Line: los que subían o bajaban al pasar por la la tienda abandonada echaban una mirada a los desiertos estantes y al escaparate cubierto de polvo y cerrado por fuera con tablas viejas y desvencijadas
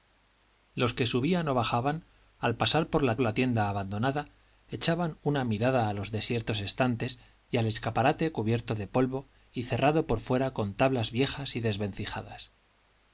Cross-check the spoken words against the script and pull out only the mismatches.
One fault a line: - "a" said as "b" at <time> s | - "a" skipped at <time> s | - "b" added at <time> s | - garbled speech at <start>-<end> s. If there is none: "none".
none